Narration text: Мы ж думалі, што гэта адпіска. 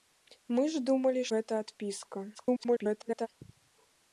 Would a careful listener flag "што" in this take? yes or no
yes